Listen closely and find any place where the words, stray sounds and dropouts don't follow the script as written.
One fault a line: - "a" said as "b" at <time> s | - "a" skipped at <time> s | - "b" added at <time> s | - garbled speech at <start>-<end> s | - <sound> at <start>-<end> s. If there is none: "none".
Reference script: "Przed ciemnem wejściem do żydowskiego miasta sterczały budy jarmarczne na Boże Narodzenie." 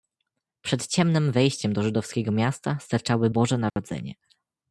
- "budy jarmarczne na" skipped at 3.3 s
- dropout at 3.7-3.8 s